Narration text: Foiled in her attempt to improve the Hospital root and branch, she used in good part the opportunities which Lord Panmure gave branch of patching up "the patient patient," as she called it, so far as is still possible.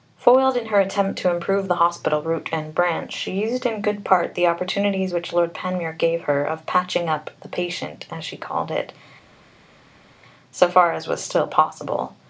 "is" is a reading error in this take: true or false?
true